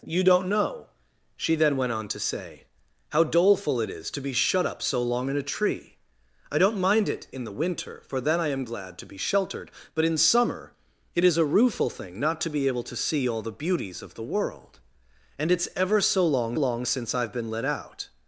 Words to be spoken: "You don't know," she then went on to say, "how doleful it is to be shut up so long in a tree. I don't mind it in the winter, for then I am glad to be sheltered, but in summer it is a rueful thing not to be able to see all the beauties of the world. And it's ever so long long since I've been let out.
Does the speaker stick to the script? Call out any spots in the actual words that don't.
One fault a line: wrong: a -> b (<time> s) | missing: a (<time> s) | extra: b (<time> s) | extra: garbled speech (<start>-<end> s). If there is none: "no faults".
no faults